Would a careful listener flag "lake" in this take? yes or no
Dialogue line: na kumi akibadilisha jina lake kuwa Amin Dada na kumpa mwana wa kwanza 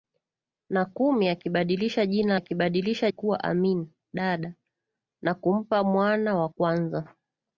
yes